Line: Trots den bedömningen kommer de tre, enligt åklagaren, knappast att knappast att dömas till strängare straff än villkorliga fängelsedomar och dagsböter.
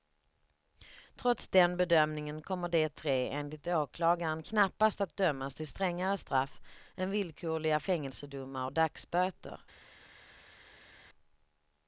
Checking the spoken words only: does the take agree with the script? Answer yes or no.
no